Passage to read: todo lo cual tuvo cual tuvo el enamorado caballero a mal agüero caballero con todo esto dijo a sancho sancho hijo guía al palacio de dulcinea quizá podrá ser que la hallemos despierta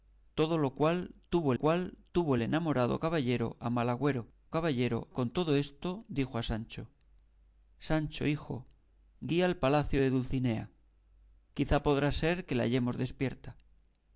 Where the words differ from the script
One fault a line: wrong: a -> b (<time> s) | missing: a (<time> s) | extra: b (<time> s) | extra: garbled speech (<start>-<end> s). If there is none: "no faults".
no faults